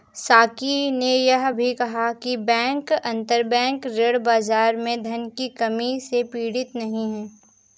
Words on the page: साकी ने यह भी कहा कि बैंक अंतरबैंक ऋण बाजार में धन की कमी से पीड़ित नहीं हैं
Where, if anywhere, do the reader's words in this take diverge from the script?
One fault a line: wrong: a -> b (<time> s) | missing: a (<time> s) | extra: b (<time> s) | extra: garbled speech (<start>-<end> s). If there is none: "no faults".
no faults